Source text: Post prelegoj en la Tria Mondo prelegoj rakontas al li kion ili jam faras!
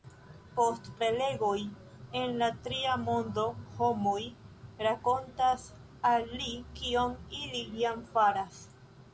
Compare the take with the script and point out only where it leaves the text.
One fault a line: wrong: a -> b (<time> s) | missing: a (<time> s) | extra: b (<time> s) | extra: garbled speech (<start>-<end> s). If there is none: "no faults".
wrong: prelegoj -> homoj (3.8 s)